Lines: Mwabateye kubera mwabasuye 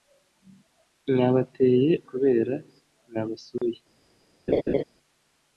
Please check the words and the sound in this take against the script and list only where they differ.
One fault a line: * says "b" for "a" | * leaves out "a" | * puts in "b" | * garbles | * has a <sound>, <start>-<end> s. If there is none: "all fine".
* has a dropout, 3.6-3.6 s
* has a laugh, 4.5-4.8 s